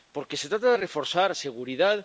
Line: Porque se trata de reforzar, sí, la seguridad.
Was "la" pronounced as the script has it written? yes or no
no